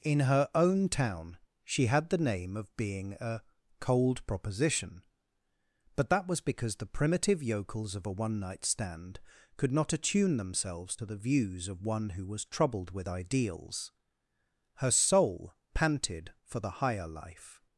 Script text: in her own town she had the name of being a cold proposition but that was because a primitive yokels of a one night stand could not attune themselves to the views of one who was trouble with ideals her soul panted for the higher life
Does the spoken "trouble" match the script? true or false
false